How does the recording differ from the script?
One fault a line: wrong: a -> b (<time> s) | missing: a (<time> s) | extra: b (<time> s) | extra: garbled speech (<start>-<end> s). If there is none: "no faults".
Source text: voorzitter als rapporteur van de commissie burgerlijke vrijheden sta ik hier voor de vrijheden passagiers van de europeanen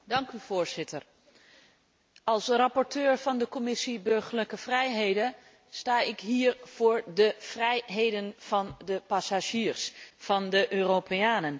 extra: van de (8.4 s)